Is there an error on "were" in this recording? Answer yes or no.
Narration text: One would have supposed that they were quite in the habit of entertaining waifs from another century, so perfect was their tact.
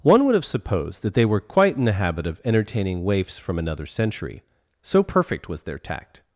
no